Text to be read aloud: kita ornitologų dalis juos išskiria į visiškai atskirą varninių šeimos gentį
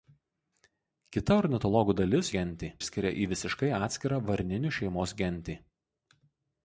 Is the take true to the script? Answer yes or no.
no